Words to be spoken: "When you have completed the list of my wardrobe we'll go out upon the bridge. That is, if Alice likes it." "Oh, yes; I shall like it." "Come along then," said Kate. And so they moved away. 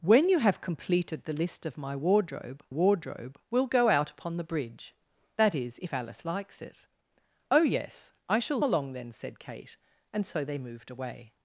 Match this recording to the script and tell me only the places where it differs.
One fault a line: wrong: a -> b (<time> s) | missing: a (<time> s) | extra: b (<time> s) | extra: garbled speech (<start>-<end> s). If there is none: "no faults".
extra: wardrobe (2.7 s)
missing: like it Come (8.6 s)